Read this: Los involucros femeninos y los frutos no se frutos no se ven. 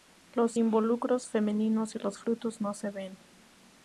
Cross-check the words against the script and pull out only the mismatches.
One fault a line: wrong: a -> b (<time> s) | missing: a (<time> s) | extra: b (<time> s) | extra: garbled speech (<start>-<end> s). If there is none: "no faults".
missing: frutos no se (2.9 s)